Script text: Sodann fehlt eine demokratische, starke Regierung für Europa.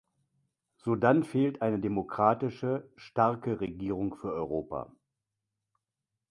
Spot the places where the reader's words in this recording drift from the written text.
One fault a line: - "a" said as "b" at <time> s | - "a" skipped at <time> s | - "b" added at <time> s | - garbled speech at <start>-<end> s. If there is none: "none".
none